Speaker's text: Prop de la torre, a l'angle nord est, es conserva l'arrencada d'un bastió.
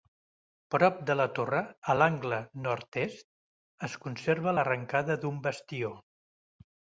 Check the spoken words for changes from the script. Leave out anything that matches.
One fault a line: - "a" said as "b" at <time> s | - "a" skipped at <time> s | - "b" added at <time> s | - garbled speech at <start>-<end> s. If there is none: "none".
none